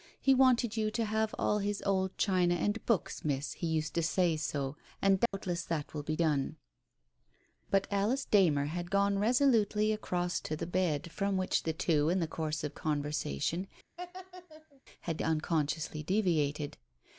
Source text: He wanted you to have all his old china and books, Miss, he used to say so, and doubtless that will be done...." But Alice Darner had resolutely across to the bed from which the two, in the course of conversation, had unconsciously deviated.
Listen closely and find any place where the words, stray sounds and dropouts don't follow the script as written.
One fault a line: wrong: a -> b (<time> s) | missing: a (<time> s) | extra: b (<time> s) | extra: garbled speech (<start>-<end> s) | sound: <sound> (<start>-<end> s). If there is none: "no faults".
sound: dropout (5.3-5.3 s)
extra: gone (8.9 s)
sound: laugh (14.0-14.8 s)